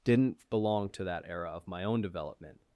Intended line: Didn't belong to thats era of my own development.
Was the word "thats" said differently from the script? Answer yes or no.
yes